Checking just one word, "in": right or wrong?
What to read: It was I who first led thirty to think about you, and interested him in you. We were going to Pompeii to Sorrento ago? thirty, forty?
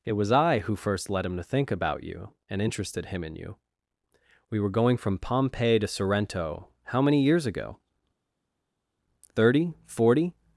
right